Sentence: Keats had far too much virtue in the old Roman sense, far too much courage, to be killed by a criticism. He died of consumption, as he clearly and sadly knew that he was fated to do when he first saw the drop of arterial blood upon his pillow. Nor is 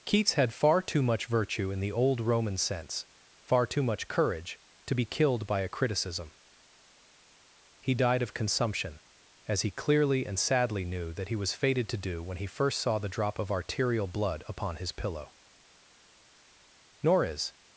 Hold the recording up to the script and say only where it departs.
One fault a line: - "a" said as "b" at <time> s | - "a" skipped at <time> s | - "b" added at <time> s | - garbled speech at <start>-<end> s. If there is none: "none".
none